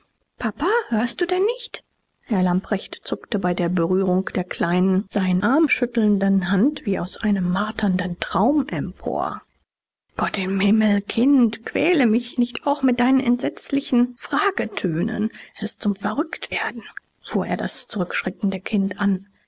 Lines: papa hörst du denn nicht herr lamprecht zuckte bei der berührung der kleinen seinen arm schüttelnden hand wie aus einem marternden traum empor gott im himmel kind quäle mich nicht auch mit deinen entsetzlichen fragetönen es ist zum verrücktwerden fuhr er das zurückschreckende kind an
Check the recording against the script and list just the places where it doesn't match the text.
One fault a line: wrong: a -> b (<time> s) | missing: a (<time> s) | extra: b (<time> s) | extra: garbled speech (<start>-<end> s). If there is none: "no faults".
no faults